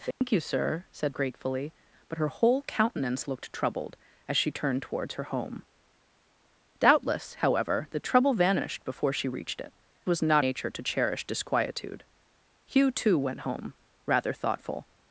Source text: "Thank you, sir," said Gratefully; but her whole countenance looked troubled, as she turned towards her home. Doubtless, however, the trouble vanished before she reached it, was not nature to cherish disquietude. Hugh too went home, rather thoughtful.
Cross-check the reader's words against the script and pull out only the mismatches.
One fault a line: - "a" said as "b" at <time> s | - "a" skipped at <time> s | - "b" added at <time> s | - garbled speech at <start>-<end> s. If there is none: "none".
none